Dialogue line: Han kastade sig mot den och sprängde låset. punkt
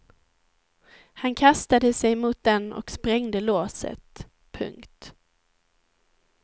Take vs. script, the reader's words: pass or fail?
pass